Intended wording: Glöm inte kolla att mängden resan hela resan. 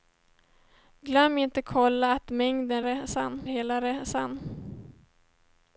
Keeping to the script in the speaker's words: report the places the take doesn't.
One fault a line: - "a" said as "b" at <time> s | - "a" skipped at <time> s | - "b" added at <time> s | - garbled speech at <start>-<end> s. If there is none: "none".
none